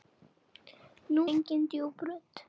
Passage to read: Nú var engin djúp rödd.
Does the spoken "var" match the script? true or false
false